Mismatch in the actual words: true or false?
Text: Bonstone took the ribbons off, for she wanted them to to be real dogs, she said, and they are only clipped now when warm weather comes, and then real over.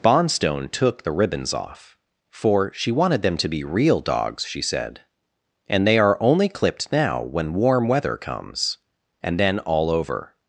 true